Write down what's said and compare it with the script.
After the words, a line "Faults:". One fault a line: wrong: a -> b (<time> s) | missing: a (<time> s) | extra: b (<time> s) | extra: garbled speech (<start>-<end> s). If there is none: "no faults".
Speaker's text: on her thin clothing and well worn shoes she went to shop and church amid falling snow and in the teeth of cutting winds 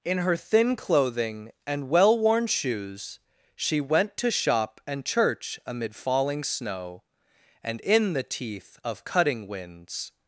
in her thin clothing and well worn shoes she went to shop and church amid falling snow and in the teeth of cutting winds
Faults:
wrong: on -> in (0.0 s)